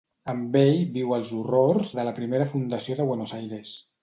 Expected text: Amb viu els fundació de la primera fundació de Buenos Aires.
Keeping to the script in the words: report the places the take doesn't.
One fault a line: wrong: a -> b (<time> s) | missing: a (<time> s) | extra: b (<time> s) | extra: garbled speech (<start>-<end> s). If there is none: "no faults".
extra: ell (0.6 s)
wrong: fundació -> horrors (1.4 s)